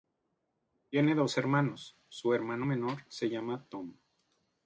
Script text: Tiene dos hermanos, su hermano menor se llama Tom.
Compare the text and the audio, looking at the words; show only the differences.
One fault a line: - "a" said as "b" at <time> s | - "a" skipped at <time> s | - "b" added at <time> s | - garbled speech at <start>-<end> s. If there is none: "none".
none